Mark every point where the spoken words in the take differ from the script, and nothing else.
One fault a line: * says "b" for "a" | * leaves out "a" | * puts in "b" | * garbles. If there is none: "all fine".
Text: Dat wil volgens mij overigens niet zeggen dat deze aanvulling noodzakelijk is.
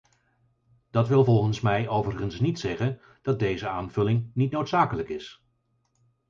* puts in "niet"